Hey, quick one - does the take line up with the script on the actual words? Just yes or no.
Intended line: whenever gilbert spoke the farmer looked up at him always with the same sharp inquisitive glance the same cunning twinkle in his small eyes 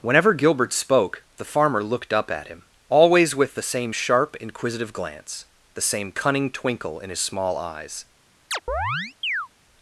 yes